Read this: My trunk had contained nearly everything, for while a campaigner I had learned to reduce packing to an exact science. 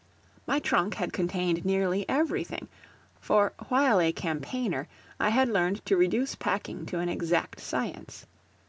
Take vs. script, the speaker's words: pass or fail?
pass